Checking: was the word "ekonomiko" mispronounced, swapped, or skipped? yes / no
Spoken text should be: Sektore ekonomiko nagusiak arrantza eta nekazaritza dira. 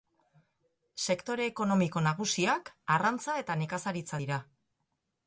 no